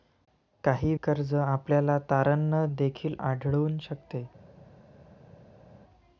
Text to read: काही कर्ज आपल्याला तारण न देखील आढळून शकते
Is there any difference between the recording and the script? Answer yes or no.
no